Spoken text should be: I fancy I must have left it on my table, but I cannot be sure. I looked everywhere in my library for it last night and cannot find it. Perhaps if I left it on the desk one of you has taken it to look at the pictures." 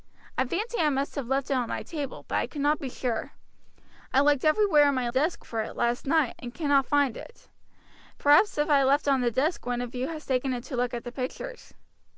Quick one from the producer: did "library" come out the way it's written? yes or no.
no